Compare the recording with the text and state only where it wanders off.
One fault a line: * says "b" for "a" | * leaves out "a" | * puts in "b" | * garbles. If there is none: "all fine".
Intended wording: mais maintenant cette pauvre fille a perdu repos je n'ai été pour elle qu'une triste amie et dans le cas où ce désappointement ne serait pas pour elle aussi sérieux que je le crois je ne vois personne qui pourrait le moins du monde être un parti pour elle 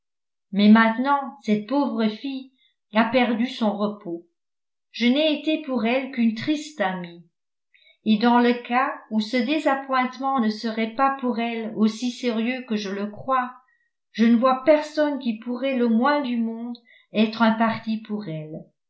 * puts in "son"